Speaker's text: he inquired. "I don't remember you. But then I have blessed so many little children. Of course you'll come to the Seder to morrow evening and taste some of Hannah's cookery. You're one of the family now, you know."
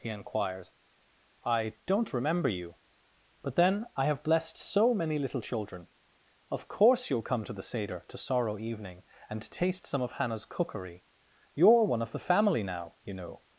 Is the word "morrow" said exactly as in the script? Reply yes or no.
no